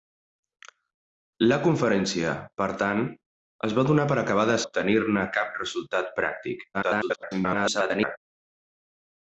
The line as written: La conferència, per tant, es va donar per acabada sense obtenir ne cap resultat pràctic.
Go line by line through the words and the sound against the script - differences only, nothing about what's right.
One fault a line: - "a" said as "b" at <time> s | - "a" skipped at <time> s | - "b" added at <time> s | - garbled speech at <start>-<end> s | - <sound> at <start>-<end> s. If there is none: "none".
- "sense" skipped at 4.6 s
- garbled speech at 6.7-8.2 s